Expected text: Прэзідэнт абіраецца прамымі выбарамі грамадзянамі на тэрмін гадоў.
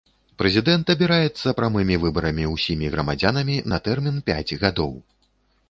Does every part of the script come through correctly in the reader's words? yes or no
no